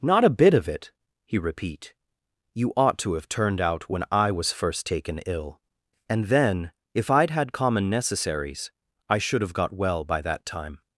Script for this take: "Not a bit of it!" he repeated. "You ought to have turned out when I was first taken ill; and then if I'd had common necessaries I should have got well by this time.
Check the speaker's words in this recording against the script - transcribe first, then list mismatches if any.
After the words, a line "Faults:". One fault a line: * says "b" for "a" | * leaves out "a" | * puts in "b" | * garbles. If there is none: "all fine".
"Not a bit of it!" he repeat. "You ought to have turned out when I was first taken ill; and then if I'd had common necessaries I should have got well by that time.
Faults:
* says "repeat" for "repeated"
* says "that" for "this"